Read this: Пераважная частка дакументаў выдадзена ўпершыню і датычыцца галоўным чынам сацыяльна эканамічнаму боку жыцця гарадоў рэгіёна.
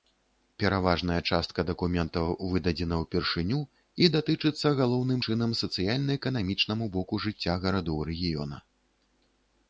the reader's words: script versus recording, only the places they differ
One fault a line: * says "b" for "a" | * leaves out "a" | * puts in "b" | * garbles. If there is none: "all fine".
all fine